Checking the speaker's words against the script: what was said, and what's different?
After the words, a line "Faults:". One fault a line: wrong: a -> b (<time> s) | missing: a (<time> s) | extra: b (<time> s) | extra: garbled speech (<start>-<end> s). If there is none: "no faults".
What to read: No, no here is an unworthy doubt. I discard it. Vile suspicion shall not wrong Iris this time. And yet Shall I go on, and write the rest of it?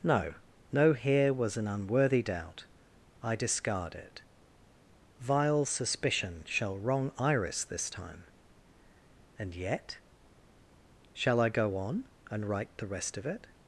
No, no here was an unworthy doubt. I discard it. Vile suspicion shall wrong Iris this time. And yet Shall I go on, and write the rest of it?
Faults:
wrong: is -> was (1.3 s)
missing: not (6.8 s)